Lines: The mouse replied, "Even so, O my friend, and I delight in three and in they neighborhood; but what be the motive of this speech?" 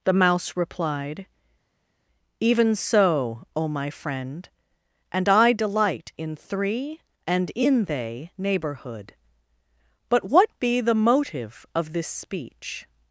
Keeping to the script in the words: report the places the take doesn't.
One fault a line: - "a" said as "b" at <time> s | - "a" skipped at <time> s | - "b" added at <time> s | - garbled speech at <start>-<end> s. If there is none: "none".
none